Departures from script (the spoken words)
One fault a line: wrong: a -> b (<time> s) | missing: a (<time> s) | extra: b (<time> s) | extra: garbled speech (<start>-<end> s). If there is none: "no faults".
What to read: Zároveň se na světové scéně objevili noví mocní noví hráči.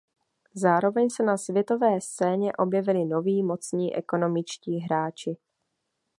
wrong: noví -> ekonomičtí (3.9 s)